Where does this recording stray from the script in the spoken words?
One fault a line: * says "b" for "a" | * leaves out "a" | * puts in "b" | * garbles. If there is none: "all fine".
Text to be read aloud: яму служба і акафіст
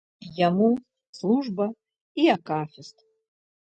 all fine